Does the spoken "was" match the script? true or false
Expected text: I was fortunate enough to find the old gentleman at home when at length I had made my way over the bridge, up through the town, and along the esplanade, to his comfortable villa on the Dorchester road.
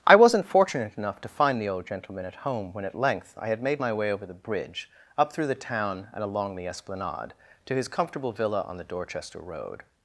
false